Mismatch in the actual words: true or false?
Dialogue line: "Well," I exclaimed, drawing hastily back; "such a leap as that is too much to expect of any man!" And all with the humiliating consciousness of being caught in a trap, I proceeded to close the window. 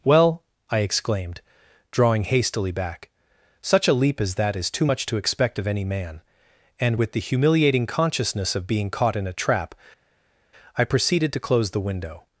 true